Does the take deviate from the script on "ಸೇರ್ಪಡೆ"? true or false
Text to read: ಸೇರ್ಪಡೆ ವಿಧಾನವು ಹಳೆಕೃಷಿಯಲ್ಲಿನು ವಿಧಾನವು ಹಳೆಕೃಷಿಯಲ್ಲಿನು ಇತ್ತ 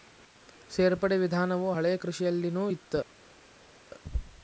false